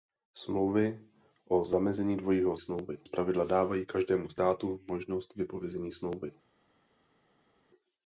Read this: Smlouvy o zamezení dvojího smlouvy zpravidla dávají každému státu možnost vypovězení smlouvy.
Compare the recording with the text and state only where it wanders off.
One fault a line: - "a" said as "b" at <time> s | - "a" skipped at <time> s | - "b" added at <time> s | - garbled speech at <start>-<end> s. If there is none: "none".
none